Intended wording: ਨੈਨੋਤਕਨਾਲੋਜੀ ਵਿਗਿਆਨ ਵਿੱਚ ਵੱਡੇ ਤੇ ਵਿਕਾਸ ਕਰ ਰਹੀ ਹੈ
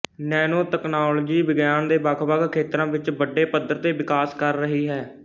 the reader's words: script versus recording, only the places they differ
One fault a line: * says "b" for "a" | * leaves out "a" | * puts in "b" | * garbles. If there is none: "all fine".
* puts in "ਦੇ ਵੱਖਵੱਖ ਖੇਤਰਾਂ"
* puts in "ਪੱਧਰ"